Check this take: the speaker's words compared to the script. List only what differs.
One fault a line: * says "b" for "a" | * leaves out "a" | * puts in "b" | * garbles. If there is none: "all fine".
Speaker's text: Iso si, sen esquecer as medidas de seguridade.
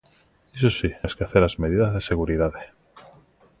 * leaves out "sen"